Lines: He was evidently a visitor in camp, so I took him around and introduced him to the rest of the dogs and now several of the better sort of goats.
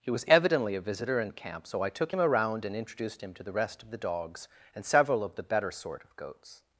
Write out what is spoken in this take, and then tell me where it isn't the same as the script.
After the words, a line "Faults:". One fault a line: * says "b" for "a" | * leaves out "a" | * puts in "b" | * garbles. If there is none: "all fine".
He was evidently a visitor in camp, so I took him around and introduced him to the rest of the dogs and several of the better sort of goats.
Faults:
* leaves out "now"